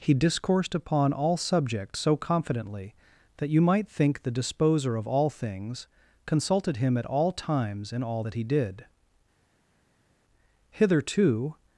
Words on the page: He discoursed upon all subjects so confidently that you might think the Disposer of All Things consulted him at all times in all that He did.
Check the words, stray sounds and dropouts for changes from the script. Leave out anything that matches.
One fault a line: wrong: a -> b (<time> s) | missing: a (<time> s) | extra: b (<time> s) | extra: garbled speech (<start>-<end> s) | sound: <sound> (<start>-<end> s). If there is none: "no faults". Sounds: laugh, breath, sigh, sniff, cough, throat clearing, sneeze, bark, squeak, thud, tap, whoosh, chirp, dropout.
extra: Hitherto (10.7 s)